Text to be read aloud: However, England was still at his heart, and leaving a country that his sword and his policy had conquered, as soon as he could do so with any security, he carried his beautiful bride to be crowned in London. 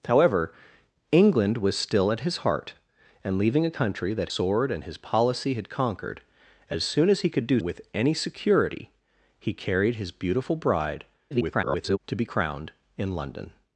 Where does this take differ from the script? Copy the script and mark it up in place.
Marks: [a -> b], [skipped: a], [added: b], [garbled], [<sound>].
However, England was still at his heart, and leaving a country that [skipped: his] sword and his policy had conquered, as soon as he could do [skipped: so] with any security, he carried his beautiful bride [garbled] to be crowned in London.